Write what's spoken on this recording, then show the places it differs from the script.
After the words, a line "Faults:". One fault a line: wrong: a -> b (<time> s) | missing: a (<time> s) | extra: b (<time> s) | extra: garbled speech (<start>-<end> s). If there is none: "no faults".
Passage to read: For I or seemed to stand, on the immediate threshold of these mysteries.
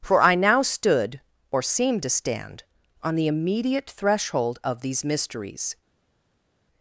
For I now stood, or seemed to stand, on the immediate threshold of these mysteries.
Faults:
extra: now stood (0.3 s)